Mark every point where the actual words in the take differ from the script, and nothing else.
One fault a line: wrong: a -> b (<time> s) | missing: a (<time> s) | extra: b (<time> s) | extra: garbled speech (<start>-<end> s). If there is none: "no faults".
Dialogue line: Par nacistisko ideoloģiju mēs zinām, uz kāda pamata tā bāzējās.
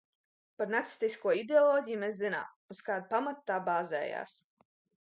no faults